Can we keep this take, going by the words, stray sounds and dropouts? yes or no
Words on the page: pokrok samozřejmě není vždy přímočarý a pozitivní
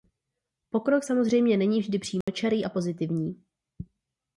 no